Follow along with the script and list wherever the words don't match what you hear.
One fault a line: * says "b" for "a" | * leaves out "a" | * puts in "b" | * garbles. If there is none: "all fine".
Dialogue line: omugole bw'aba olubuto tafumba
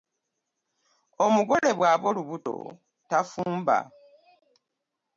all fine